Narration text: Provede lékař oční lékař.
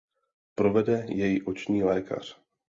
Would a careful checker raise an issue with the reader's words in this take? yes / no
yes